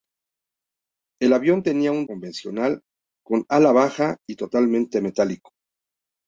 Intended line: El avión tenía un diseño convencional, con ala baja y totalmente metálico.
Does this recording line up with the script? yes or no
no